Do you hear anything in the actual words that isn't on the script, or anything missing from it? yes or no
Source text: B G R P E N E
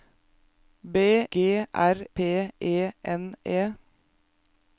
no